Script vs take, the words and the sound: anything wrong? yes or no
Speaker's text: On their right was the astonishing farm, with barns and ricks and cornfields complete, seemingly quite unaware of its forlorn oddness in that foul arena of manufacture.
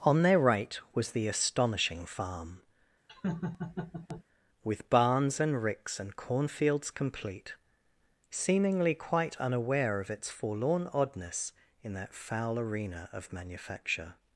yes